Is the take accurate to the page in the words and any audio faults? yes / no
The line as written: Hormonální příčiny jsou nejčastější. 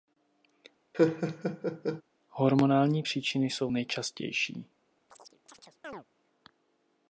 no